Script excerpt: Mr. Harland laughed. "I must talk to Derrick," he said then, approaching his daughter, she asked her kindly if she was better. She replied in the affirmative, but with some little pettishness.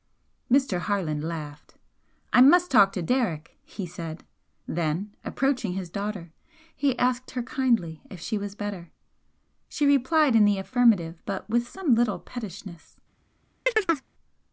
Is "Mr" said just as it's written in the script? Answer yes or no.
yes